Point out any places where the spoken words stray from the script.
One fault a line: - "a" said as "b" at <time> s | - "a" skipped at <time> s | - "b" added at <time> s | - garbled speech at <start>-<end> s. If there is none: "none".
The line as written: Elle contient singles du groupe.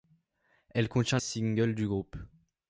none